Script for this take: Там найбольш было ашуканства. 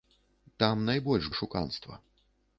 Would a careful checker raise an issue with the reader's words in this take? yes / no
yes